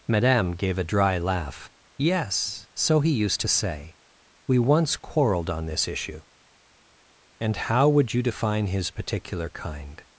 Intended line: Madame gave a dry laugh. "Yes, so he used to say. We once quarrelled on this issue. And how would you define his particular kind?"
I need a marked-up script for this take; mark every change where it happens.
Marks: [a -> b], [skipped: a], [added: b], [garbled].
Madame gave a dry laugh. "Yes, so he used to say. We once quarrelled on this issue. And how would you define his particular kind?"